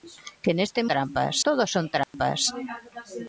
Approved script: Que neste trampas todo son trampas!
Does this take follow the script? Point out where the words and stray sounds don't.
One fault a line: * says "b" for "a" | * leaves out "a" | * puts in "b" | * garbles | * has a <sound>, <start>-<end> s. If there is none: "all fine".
* has a dropout, 2.0-2.1 s